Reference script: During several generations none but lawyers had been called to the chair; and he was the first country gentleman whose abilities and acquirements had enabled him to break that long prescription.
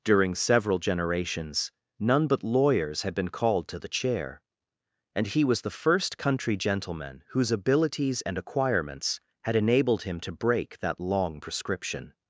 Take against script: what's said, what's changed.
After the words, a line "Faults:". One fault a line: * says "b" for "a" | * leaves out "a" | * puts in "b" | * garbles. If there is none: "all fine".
During several generations none but lawyers had been called to the chair; and he was the first country gentleman whose abilities and acquirements had enabled him to break that long prescription.
Faults:
all fine